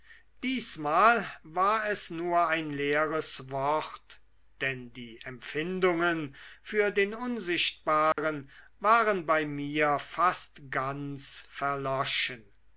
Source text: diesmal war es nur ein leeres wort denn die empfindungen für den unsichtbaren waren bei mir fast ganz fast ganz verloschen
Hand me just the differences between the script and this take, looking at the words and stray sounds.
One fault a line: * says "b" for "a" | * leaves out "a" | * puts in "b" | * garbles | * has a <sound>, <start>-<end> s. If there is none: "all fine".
* has a dropout, 8.1-8.2 s
* leaves out "fast ganz"